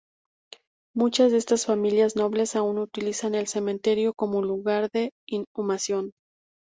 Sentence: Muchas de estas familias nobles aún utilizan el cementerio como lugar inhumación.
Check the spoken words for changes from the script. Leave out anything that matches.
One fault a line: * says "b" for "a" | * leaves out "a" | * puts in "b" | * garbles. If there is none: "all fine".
* puts in "de"